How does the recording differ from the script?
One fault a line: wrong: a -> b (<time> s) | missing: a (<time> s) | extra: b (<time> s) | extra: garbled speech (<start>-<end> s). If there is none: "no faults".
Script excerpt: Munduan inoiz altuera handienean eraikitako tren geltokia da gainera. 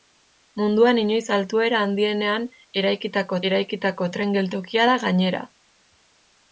extra: eraikitako (3.5 s)